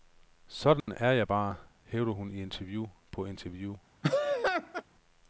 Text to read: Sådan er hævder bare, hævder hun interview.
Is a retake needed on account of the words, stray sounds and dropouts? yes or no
yes